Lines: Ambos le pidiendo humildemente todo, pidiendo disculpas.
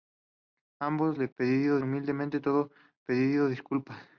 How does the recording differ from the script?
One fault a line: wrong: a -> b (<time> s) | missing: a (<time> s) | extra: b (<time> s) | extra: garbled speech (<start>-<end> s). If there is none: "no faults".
no faults